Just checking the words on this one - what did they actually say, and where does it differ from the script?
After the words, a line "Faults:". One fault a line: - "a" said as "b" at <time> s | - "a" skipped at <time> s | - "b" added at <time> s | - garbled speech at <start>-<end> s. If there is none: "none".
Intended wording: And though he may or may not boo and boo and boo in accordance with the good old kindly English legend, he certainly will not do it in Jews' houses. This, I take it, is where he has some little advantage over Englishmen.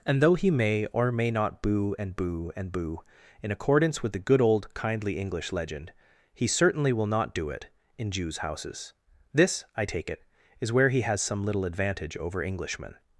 And though he may or may not boo and boo and boo in accordance with the good old kindly English legend, he certainly will not do it in Jews' houses. This, I take it, is where he has some little advantage over Englishmen.
Faults:
none